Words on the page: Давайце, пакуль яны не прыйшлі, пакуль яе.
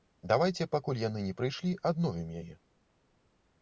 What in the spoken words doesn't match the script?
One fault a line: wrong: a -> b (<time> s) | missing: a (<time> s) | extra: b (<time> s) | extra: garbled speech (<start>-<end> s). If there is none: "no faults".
wrong: пакуль -> адновім (1.9 s)